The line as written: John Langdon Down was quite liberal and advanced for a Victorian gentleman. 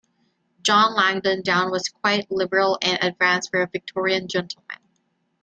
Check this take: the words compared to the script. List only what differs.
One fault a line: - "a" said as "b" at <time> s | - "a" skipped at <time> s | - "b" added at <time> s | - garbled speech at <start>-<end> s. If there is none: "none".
none